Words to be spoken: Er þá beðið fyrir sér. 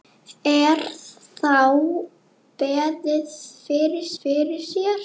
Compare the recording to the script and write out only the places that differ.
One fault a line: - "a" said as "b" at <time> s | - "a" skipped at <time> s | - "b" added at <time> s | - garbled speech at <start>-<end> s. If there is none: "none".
- "fyrir" added at 4.2 s